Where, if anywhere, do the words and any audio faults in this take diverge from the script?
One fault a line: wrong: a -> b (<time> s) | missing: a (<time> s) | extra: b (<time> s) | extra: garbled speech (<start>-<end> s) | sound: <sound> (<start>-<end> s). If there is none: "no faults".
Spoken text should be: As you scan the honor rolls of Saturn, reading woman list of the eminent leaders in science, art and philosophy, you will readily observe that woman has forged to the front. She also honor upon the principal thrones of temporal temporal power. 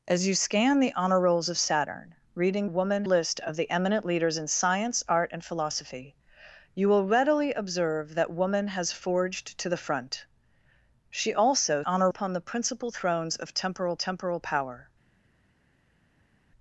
no faults